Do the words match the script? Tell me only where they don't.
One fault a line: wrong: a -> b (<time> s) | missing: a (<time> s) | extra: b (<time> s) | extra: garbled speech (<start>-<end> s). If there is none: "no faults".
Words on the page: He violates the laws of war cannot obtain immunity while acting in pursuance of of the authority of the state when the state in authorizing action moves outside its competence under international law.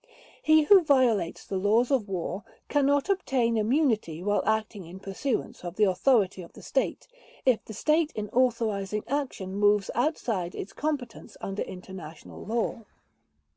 extra: who (0.6 s)
missing: of (5.8 s)
wrong: when -> if (7.4 s)